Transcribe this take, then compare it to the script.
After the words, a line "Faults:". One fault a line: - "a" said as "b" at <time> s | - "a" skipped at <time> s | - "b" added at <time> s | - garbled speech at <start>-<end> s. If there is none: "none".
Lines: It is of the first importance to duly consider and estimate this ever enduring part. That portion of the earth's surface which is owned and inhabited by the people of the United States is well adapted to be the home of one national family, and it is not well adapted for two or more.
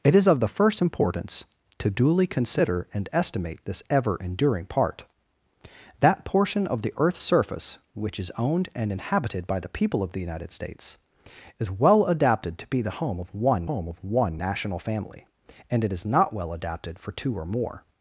It is of the first importance to duly consider and estimate this ever enduring part. That portion of the earth's surface which is owned and inhabited by the people of the United States is well adapted to be the home of one home of one national family, and it is not well adapted for two or more.
Faults:
- "home of one" added at 13.6 s